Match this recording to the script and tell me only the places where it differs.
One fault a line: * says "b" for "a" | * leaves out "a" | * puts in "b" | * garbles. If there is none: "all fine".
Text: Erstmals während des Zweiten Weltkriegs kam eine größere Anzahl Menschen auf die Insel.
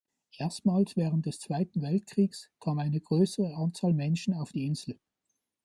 all fine